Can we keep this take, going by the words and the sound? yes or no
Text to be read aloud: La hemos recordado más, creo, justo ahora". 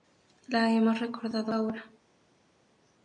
no